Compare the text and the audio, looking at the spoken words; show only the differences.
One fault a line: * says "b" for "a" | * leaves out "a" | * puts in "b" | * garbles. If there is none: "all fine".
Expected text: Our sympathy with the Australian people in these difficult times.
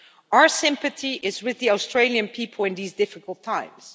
* puts in "is"